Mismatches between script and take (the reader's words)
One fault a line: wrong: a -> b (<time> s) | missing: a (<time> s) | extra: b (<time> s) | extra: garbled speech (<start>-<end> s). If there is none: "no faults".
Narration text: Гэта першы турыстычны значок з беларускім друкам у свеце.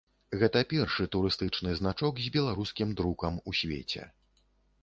no faults